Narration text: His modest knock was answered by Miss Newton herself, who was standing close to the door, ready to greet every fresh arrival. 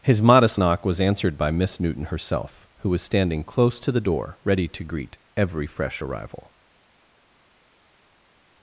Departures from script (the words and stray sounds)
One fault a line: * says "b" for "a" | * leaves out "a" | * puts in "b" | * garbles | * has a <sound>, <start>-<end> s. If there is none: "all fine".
all fine